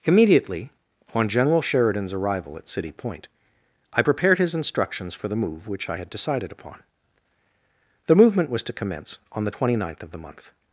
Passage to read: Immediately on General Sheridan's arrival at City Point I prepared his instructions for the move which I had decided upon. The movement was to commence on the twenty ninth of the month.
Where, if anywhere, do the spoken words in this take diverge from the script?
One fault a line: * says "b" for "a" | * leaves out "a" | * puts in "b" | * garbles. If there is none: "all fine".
all fine